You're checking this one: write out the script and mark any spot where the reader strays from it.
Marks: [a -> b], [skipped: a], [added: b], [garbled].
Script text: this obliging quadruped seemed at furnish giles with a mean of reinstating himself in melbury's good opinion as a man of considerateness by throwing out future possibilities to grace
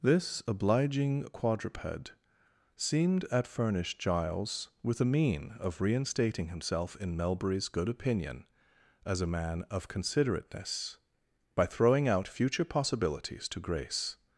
this obliging quadruped seemed at furnish giles with a mean of reinstating himself in melbury's good opinion as a man of considerateness by throwing out future possibilities to grace